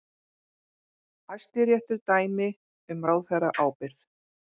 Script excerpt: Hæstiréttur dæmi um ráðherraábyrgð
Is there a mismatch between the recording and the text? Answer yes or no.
no